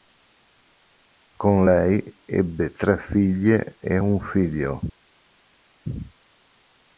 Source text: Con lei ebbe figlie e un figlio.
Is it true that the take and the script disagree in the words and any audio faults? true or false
true